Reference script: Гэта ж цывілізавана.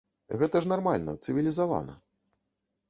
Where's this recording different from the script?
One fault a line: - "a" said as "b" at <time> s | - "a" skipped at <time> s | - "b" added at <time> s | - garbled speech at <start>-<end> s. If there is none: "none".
- "нармальна" added at 0.7 s